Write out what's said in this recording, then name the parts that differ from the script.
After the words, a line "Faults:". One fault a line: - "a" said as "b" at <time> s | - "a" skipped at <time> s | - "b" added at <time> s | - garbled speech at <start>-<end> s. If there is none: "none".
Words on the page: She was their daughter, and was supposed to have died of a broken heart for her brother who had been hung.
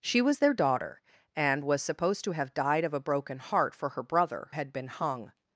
She was their daughter, and was supposed to have died of a broken heart for her brother had been hung.
Faults:
- "who" skipped at 4.5 s